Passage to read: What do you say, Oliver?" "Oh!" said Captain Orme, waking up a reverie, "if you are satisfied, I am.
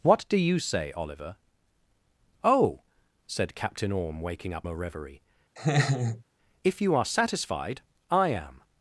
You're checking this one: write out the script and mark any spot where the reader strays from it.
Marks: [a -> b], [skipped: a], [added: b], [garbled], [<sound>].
What do you say, Oliver?" "Oh!" said Captain Orme, waking up a reverie, [laugh] "if you are satisfied, I am.